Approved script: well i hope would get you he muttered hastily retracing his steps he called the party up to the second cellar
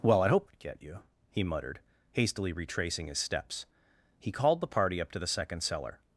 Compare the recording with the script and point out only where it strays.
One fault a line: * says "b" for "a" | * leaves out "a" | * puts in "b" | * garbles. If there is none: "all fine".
all fine